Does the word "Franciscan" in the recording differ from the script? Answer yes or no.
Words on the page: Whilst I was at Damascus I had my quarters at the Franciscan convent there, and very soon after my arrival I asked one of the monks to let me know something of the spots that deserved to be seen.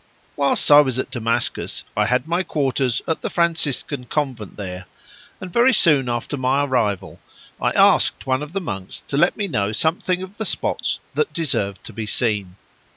no